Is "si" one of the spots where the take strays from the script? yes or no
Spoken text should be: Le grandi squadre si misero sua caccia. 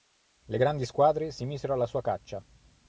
no